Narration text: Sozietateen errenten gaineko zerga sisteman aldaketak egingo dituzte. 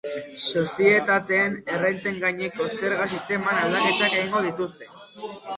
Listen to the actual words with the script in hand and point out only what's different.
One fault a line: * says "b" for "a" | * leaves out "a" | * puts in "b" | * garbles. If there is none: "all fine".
all fine